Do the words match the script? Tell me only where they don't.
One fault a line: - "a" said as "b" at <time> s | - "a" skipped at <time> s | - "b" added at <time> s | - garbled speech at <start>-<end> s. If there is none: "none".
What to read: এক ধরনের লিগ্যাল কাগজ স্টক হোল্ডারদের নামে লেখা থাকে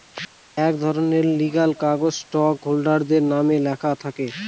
none